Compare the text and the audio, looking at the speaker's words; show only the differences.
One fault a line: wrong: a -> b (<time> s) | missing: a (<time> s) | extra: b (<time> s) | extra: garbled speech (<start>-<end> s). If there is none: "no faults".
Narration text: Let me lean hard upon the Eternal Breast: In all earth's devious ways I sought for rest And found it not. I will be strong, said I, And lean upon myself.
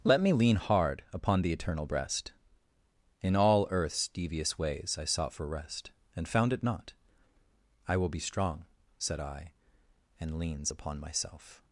wrong: lean -> leans (10.4 s)